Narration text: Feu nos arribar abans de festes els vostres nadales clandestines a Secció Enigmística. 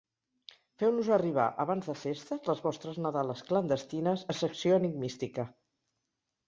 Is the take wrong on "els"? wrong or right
wrong